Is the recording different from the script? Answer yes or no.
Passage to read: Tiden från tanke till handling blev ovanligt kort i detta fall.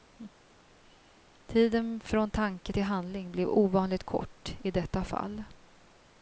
no